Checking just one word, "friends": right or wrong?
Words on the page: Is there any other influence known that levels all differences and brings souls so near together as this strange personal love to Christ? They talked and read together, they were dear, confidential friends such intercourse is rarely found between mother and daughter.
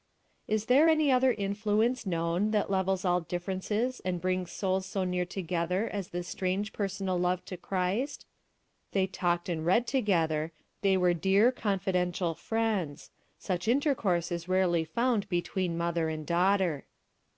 right